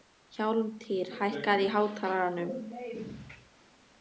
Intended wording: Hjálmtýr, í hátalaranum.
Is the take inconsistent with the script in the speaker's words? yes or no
yes